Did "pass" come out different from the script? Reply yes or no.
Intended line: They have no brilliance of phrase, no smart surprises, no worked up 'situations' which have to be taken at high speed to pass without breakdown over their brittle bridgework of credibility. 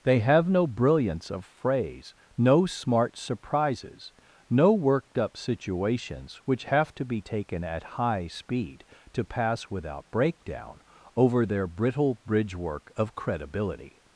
no